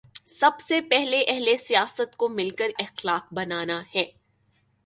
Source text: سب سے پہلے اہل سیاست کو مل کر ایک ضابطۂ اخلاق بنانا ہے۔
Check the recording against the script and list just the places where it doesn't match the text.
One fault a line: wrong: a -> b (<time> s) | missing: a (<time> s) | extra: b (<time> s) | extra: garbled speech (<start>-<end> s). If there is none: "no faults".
missing: ایک ضابطۂ (2.7 s)